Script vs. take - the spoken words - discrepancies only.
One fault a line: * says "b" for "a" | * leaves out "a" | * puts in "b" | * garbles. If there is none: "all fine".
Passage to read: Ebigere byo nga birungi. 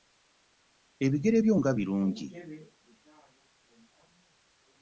all fine